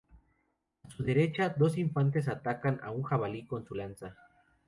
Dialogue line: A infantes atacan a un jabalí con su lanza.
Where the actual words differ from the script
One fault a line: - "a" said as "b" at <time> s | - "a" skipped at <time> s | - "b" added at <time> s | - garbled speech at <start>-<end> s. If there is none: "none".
- "su derecha dos" added at 0.9 s